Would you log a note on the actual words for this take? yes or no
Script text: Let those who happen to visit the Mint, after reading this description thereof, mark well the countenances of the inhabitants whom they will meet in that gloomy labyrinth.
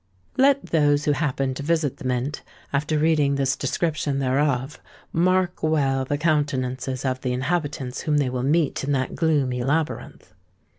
no